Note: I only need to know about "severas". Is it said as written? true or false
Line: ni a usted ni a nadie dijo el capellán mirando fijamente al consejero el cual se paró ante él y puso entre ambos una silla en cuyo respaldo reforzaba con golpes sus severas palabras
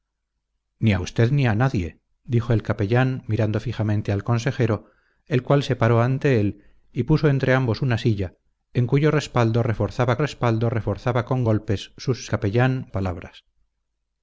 false